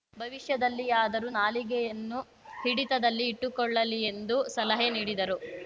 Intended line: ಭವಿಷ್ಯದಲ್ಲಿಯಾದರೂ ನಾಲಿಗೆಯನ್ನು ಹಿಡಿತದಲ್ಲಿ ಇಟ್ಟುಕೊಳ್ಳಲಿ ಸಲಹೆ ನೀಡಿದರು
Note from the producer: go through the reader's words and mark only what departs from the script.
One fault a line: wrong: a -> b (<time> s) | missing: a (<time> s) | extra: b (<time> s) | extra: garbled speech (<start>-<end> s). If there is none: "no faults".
extra: ಎಂದು (4.1 s)